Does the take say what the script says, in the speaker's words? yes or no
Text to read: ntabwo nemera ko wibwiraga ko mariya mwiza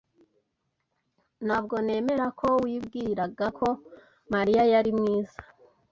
no